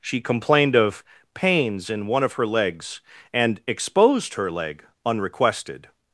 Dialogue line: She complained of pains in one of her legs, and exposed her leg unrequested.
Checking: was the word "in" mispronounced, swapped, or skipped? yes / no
no